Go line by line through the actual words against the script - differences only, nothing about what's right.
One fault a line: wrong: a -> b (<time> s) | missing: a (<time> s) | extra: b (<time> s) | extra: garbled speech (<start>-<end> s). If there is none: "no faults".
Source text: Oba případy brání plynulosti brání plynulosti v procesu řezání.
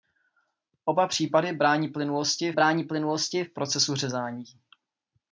no faults